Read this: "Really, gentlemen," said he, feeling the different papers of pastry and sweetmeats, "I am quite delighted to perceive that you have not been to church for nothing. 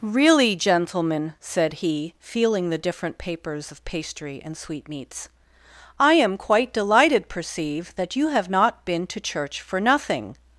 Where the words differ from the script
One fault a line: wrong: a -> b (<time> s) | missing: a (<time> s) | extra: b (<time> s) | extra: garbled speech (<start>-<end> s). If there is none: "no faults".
missing: to (7.3 s)